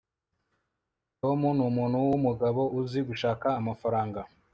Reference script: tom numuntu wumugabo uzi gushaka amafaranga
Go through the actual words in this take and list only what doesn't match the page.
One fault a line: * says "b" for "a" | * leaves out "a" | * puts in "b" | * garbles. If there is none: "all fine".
all fine